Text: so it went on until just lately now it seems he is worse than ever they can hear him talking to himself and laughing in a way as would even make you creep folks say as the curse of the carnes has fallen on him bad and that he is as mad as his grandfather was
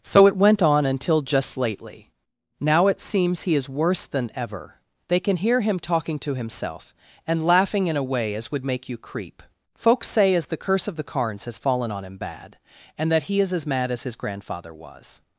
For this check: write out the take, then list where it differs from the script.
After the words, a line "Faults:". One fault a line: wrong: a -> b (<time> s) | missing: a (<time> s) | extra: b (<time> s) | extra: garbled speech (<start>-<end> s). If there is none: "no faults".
so it went on until just lately now it seems he is worse than ever they can hear him talking to himself and laughing in a way as would make you creep folks say as the curse of the carnes has fallen on him bad and that he is as mad as his grandfather was
Faults:
missing: even (8.7 s)